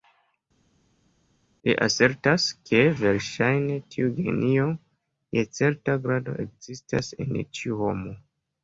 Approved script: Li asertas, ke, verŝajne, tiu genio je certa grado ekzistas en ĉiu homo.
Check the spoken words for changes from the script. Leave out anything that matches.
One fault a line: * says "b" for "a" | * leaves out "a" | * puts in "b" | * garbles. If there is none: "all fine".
all fine